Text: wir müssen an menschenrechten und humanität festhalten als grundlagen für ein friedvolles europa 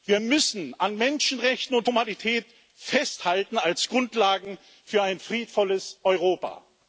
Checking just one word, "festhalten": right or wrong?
right